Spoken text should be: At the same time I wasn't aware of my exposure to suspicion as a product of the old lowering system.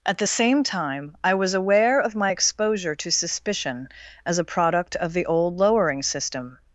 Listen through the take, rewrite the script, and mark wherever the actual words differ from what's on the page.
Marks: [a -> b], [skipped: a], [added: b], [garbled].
At the same time I [wasn't -> was] aware of my exposure to suspicion as a product of the old lowering system.